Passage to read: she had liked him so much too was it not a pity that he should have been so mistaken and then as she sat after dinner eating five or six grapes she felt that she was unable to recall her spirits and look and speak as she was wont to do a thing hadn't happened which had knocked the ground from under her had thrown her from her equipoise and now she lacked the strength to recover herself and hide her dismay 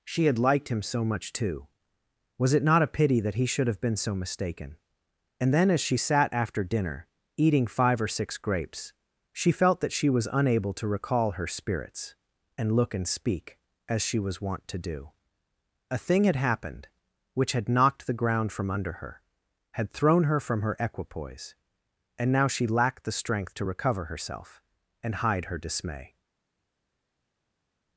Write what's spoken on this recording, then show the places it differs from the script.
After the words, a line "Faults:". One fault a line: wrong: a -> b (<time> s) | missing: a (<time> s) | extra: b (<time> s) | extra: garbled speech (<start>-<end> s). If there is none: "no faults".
she had liked him so much too was it not a pity that he should have been so mistaken and then as she sat after dinner eating five or six grapes she felt that she was unable to recall her spirits and look and speak as she was wont to do a thing had happened which had knocked the ground from under her had thrown her from her equipoise and now she lacked the strength to recover herself and hide her dismay
Faults:
wrong: hadn't -> had (16.2 s)